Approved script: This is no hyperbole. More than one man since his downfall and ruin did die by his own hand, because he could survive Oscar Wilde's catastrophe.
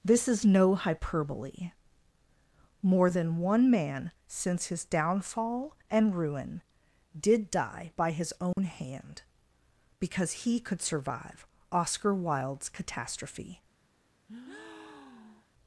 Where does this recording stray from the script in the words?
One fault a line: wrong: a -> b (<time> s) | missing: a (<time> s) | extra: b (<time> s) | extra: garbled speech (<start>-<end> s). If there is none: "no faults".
no faults